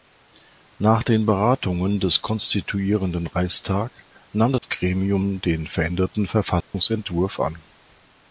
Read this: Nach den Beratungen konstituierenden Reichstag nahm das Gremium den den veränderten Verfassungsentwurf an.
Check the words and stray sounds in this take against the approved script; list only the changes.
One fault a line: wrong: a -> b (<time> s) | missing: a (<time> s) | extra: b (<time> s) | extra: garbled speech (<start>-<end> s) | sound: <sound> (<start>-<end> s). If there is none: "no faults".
extra: des (2.0 s)
sound: dropout (4.6-4.6 s)
missing: den (5.6 s)
sound: dropout (6.6-6.7 s)